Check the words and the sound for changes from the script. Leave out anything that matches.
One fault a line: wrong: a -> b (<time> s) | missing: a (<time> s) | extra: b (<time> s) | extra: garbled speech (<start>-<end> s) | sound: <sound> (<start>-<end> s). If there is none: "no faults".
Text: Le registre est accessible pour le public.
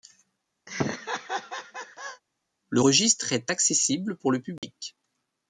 sound: laugh (0.7-2.2 s)
sound: dropout (4.6-4.6 s)